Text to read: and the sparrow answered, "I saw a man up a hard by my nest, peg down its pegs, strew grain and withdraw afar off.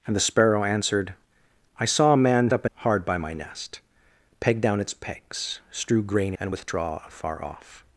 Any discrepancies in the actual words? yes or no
no